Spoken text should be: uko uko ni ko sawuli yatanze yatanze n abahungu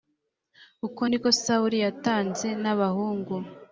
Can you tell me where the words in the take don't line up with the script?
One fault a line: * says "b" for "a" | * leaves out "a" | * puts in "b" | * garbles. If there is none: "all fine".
* leaves out "uko"
* leaves out "yatanze"